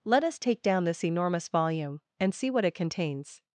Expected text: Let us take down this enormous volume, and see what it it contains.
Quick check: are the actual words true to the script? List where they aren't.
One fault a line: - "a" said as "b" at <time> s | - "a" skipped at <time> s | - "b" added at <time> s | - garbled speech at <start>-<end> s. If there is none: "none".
- "it" skipped at 2.8 s